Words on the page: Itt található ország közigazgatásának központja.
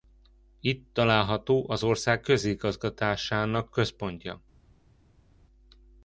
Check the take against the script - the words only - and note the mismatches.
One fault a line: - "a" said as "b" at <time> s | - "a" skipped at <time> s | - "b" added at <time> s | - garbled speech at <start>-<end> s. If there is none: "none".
- "az" added at 1.7 s